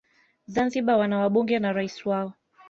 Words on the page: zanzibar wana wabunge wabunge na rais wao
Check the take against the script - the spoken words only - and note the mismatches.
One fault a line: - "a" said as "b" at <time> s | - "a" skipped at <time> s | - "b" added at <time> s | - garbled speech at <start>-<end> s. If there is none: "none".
- "wabunge" skipped at 1.6 s